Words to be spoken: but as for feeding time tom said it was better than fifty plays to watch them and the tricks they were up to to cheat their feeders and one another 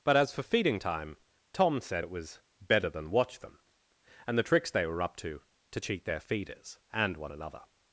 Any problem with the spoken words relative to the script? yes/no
yes